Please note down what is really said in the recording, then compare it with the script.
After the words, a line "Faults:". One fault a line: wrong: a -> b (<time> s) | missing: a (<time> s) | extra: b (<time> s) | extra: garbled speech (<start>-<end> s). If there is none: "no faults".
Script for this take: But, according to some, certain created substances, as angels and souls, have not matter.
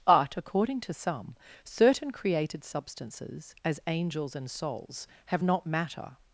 But, according to some, certain created substances, as angels and souls, have not matter.
Faults:
no faults